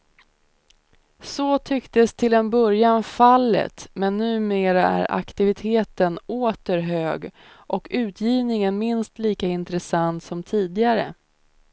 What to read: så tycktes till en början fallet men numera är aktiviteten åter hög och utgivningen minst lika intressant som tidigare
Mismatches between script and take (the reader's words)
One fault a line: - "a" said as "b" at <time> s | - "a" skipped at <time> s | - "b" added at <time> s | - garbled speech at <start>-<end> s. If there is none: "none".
none